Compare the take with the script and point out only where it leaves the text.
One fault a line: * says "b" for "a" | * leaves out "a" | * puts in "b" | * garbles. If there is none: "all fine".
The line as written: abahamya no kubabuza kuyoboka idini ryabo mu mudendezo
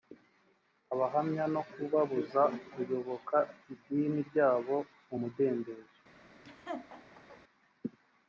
all fine